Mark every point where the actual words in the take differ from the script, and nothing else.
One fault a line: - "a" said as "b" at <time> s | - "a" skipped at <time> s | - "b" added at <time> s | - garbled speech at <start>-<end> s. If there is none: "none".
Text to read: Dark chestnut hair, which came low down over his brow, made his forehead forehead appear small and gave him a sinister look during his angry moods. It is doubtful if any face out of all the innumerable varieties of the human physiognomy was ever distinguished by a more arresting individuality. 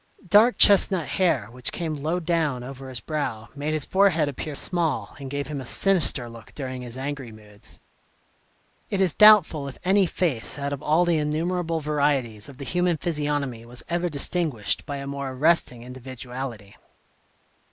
- "forehead" skipped at 4.3 s